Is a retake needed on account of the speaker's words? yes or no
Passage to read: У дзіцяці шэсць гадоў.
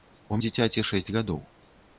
no